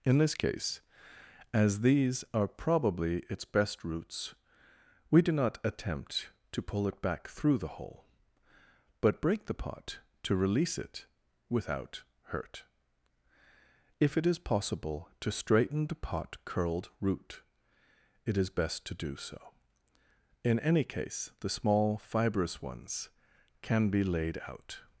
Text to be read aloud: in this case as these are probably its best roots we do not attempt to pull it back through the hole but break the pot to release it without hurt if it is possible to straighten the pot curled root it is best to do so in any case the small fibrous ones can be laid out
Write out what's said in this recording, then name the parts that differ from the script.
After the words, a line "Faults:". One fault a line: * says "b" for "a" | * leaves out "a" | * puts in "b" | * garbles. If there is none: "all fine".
in this case as these are probably its best roots we do not attempt to pull it back through the hole but break the pot to release it without hurt if it is possible to straighten the pot curled root it is best to do so in any case the small fibrous ones can be laid out
Faults:
all fine